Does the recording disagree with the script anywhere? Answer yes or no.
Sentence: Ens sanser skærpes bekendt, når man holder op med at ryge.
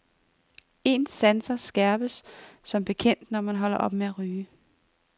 yes